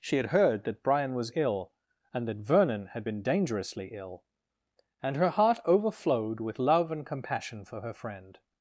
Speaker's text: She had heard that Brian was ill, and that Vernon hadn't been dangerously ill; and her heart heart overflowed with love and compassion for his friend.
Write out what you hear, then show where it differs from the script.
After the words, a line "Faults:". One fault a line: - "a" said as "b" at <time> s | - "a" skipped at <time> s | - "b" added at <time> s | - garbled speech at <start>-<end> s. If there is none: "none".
She had heard that Brian was ill, and that Vernon had been dangerously ill; and her heart overflowed with love and compassion for her friend.
Faults:
- "hadn't" said as "had" at 2.9 s
- "heart" skipped at 5.6 s
- "his" said as "her" at 7.8 s